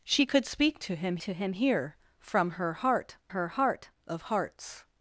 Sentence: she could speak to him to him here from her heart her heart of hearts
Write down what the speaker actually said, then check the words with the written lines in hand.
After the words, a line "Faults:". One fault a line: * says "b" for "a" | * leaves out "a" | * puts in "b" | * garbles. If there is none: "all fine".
she could speak to him to him here from her heart her heart of hearts
Faults:
all fine